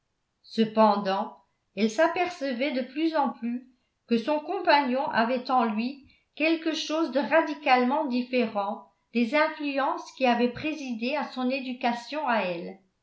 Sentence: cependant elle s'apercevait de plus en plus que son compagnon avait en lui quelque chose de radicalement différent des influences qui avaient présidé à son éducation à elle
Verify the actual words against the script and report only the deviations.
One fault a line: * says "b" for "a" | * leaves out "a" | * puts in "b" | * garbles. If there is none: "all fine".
all fine